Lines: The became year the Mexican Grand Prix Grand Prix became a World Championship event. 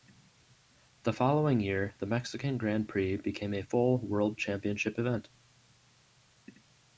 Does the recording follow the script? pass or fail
fail